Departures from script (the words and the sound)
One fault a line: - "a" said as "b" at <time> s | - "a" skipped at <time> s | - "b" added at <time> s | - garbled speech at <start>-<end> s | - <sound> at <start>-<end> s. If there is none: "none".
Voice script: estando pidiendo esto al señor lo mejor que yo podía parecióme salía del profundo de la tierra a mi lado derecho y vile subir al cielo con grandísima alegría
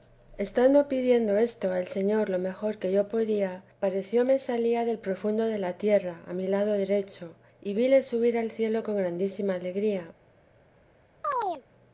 - chirp at 11.2-11.6 s